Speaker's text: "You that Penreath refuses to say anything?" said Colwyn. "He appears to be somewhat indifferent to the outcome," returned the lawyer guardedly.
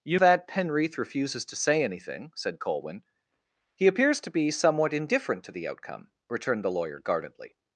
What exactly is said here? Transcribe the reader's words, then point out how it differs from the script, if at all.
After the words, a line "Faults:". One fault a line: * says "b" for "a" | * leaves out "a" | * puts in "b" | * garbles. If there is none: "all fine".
"You that Penreath refuses to say anything?" said Colwyn. "He appears to be somewhat indifferent to the outcome," returned the lawyer guardedly.
Faults:
all fine